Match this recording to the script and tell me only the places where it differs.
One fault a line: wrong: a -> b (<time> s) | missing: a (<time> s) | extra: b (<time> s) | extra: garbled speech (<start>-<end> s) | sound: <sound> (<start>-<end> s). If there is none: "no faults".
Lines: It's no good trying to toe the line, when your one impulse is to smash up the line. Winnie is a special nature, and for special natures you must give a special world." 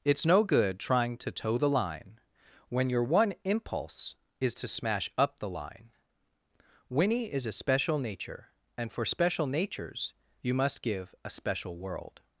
no faults